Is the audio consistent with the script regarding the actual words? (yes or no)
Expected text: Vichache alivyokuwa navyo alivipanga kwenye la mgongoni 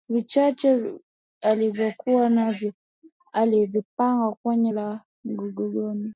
yes